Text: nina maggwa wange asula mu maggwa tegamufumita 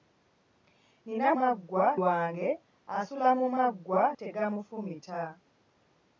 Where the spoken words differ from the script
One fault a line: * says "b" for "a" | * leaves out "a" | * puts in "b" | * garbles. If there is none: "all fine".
all fine